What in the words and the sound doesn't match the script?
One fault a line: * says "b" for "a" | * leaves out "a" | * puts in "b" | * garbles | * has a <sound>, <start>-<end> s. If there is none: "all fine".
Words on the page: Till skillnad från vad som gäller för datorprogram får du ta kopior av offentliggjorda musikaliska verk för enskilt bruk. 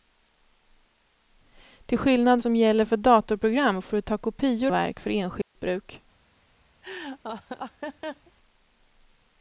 * leaves out "från vad"
* leaves out "av offentliggjorda musikaliska"
* has a dropout, 5.4-5.6 s
* has a laugh, 6.8-8.3 s